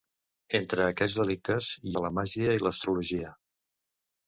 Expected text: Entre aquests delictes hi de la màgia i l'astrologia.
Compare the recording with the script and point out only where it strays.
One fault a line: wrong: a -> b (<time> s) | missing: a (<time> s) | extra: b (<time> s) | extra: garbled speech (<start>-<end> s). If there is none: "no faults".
no faults